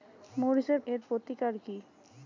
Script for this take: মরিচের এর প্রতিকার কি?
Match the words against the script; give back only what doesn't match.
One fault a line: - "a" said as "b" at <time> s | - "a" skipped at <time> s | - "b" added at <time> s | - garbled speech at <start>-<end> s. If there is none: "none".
none